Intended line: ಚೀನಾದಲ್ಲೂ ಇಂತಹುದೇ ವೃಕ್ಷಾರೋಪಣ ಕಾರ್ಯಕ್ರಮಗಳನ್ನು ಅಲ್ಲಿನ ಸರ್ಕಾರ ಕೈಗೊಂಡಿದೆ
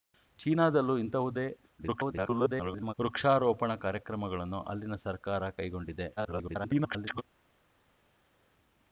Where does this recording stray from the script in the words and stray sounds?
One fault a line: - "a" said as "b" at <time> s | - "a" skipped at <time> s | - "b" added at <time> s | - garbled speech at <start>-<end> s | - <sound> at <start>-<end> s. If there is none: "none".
- garbled speech at 1.8-2.9 s
- garbled speech at 6.2-7.2 s